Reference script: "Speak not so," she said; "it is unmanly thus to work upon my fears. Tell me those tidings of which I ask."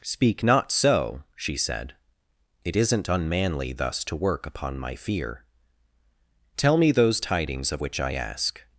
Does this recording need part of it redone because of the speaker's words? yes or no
yes